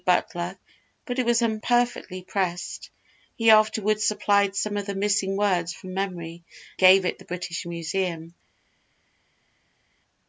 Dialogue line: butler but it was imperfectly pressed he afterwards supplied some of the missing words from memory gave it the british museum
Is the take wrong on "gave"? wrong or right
right